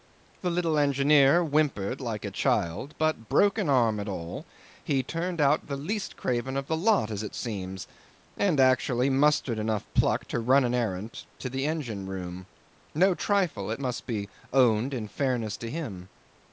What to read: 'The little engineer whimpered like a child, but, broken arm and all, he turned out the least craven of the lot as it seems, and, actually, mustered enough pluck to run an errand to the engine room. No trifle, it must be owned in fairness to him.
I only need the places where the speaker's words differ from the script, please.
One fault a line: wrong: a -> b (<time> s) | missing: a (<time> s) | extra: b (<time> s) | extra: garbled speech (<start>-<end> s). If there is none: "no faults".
no faults